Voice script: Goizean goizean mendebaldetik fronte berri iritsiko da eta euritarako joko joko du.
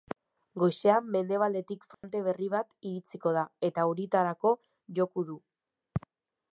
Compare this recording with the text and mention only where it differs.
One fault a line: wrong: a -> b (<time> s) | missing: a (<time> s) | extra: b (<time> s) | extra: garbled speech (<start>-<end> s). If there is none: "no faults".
missing: goizean (1.1 s)
extra: bat (2.5 s)
missing: joko (5.3 s)